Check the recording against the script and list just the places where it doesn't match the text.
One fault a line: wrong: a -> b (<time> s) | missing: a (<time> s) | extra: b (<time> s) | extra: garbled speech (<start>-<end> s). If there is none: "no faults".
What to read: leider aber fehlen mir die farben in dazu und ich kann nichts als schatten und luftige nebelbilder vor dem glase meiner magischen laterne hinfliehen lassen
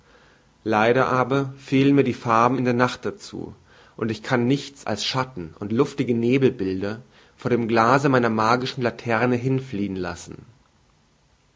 extra: der nacht (2.6 s)